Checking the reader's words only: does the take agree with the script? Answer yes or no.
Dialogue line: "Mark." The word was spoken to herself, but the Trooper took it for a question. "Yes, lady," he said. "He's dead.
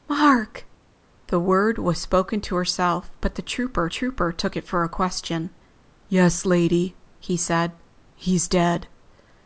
no